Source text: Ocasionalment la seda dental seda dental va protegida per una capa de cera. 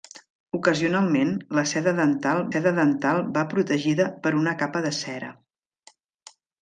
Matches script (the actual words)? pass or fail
pass